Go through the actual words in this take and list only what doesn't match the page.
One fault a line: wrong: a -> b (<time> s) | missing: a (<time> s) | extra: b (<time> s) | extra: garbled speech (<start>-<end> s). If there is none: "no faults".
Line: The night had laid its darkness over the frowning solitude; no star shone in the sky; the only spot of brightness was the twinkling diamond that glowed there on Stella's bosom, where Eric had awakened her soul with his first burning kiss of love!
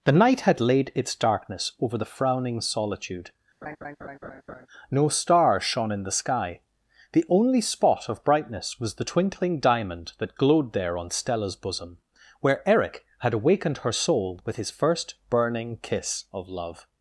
no faults